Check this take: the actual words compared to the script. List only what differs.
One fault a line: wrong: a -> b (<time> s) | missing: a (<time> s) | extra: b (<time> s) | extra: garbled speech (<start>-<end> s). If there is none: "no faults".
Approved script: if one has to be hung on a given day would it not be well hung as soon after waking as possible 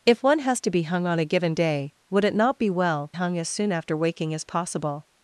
no faults